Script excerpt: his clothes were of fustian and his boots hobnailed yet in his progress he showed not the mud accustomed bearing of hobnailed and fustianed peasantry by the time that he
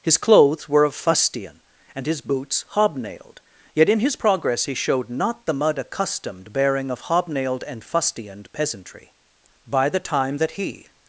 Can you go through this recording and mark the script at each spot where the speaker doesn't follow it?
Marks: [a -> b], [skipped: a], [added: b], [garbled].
his clothes were of fustian and his boots hobnailed yet in his progress he showed not the mud accustomed bearing of hobnailed and fustianed peasantry by the time that he